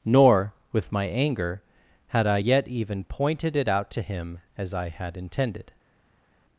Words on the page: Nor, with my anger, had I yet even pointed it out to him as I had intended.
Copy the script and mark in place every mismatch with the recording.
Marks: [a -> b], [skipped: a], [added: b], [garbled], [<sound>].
Nor, with my anger, had I yet even pointed it out to him as I had intended.